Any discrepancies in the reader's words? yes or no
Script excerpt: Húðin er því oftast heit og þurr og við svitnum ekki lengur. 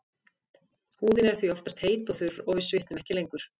no